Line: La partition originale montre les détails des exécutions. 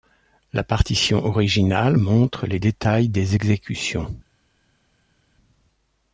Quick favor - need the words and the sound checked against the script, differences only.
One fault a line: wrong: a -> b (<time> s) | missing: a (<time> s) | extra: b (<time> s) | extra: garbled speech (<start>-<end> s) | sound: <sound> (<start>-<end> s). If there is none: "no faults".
no faults